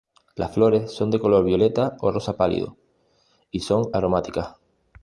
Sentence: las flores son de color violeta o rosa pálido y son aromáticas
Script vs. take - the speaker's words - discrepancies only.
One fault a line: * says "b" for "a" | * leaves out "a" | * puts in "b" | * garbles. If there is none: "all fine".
all fine